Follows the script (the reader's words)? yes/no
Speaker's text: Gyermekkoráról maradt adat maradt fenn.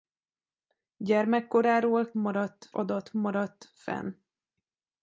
yes